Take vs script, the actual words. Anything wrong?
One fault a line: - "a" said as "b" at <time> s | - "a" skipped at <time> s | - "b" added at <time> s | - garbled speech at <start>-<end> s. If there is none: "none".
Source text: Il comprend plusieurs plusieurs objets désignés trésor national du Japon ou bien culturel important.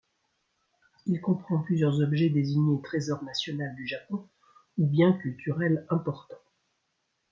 - "plusieurs" skipped at 2.0 s